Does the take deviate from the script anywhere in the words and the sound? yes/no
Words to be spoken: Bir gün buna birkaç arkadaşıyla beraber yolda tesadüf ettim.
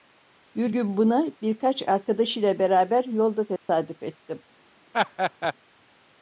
yes